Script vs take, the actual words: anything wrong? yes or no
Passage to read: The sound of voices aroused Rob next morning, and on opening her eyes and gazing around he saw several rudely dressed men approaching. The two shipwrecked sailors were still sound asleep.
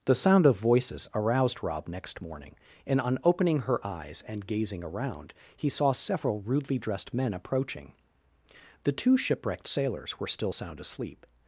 no